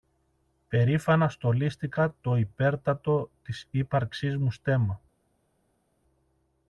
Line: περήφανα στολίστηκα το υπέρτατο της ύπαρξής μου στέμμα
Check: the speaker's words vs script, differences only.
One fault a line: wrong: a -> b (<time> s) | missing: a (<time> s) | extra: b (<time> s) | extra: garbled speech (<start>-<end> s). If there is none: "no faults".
no faults